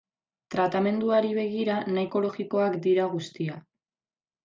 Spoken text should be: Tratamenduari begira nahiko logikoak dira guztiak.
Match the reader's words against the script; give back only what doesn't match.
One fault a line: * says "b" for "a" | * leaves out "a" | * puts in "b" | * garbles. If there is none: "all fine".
all fine